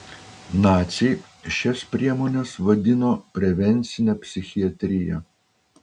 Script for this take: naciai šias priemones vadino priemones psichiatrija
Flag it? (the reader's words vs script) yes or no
yes